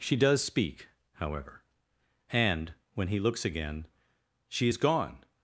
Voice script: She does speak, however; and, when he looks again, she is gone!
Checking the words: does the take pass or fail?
pass